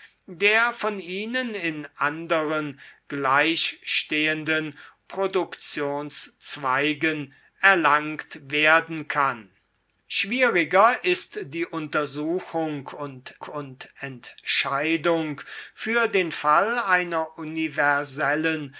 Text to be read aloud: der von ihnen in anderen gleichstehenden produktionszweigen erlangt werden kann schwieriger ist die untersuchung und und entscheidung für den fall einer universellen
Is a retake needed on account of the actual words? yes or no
no